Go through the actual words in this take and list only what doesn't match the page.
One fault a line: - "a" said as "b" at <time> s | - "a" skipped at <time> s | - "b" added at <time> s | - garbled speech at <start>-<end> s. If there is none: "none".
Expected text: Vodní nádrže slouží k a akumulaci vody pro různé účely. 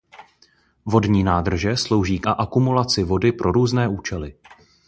none